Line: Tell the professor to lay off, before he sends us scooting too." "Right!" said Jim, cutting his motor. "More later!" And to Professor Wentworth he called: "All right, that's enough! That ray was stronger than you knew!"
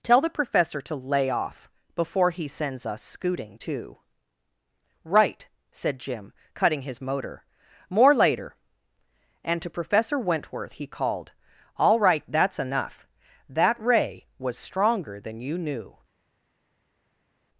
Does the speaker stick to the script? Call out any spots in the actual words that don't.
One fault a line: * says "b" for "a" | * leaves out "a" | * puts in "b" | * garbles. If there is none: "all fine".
all fine